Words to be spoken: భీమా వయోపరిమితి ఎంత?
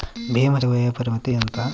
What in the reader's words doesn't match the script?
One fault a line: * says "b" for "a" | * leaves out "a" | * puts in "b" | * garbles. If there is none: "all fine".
all fine